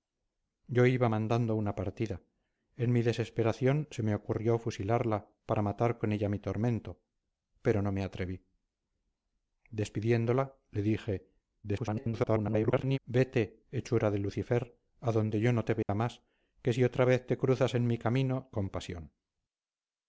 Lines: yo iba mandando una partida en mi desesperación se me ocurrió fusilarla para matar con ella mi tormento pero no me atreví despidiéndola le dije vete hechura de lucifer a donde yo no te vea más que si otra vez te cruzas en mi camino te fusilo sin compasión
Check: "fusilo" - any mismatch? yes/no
yes